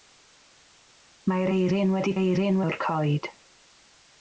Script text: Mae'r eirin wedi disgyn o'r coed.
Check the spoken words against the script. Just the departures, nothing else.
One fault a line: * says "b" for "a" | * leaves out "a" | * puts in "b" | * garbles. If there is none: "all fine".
* says "eirin" for "disgyn"